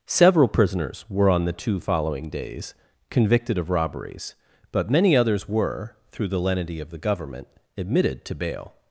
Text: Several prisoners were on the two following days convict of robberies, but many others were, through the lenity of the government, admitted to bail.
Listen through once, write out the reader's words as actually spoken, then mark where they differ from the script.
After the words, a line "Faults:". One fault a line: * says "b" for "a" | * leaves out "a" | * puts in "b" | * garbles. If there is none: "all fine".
Several prisoners were on the two following days convicted of robberies, but many others were, through the lenity of the government, admitted to bail.
Faults:
* says "convicted" for "convict"